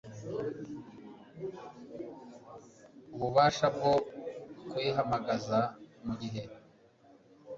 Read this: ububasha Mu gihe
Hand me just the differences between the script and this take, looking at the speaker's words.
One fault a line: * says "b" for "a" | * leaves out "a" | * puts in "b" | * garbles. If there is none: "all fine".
* puts in "bwo kuyihamagaza"